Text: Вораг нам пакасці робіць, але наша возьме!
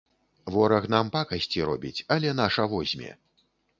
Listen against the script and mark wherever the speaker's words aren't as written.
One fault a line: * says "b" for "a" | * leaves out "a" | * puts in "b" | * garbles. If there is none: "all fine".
all fine